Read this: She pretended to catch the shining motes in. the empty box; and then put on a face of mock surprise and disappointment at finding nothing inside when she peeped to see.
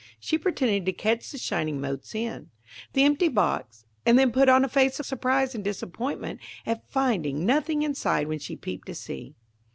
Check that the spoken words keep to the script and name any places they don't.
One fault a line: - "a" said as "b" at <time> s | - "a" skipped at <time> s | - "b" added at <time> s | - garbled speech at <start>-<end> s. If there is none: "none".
- "mock" skipped at 5.0 s